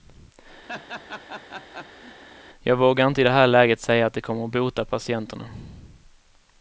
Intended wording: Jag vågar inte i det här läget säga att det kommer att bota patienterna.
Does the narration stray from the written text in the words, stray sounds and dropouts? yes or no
yes